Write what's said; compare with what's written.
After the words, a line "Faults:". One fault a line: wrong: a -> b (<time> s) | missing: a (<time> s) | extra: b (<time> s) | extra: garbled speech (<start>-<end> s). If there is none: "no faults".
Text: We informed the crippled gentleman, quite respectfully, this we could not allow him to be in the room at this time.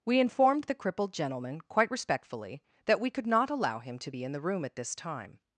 We informed the crippled gentleman, quite respectfully, that we could not allow him to be in the room at this time.
Faults:
wrong: this -> that (2.9 s)